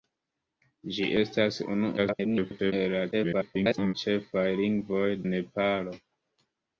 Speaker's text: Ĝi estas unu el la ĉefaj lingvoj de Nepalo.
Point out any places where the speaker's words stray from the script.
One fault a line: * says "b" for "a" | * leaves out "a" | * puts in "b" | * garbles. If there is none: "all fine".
* garbles
* garbles
* leaves out "de"